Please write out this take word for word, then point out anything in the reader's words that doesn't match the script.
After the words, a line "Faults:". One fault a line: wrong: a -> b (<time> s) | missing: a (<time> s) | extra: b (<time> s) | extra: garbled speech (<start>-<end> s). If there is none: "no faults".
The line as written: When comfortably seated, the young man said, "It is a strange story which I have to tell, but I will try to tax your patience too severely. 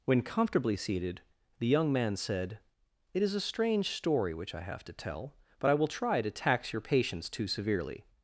When comfortably seated, the young man said, "It is a strange story which I have to tell, but I will try to tax your patience too severely.
Faults:
no faults